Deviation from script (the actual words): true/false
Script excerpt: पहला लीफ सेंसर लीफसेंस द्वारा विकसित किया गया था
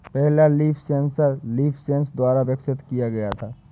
false